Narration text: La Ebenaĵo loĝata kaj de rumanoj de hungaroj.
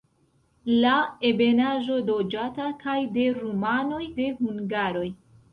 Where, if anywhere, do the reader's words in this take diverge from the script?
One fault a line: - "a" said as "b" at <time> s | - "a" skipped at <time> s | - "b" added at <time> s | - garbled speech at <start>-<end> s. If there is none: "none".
none